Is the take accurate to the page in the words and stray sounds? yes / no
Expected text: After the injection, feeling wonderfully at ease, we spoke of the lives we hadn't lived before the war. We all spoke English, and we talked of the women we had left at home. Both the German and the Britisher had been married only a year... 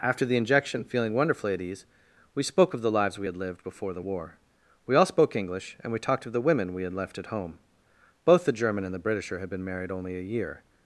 no